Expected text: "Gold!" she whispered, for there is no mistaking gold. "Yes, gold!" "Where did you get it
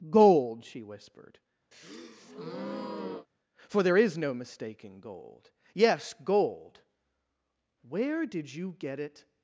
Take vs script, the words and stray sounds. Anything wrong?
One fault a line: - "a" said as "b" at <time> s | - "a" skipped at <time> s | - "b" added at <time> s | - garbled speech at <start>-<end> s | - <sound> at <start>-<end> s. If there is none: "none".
- breath at 1.7-3.3 s